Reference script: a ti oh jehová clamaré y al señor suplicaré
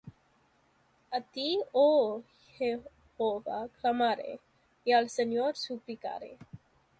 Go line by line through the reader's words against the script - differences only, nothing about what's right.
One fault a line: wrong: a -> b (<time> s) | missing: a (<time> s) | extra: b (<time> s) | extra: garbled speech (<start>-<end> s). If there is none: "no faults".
no faults